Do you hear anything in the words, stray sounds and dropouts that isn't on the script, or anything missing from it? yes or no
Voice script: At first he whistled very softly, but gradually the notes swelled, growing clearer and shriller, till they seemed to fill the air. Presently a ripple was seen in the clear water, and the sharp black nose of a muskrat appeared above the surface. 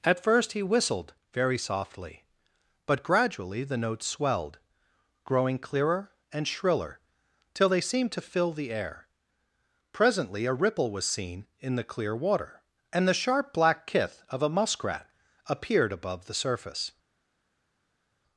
yes